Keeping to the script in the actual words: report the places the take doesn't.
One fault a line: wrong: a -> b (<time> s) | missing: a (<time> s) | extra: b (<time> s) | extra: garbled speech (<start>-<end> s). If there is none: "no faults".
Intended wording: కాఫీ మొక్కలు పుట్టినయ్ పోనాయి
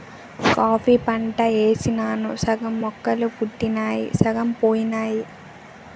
extra: పంట యేసినాను సగం (1.0 s)
extra: సగం (4.2 s)